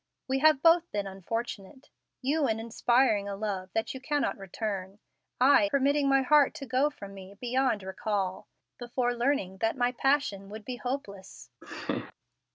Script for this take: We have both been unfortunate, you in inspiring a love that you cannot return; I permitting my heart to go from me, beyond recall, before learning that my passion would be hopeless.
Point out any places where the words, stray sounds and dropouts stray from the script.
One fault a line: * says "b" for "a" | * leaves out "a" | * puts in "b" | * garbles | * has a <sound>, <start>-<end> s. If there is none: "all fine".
* has a laugh, 11.6-12.1 s